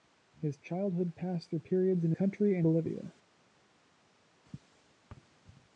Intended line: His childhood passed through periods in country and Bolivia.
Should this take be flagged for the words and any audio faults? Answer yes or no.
no